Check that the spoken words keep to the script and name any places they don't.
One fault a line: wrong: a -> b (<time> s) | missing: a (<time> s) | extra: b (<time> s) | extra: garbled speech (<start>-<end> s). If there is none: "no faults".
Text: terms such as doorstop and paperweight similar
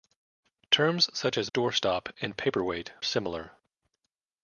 no faults